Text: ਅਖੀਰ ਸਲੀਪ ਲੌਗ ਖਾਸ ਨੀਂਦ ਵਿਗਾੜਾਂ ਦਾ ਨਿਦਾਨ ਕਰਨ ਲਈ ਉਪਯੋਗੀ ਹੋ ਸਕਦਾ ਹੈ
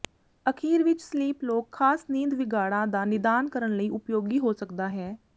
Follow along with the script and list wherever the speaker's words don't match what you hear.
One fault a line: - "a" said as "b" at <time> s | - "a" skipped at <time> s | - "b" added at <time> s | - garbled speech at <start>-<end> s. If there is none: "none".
- "ਵਿੱਚ" added at 0.8 s